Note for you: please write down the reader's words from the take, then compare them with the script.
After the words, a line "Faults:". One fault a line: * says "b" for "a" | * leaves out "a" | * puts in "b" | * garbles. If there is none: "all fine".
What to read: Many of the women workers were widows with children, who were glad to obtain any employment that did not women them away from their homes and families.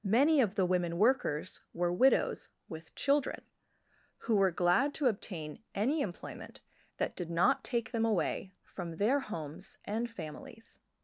Many of the women workers were widows with children, who were glad to obtain any employment that did not take them away from their homes and families.
Faults:
* says "take" for "women"